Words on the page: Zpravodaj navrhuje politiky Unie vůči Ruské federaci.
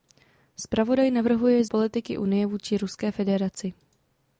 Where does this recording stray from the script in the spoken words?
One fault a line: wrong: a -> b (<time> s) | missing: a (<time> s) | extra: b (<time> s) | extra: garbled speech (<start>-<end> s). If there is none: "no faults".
no faults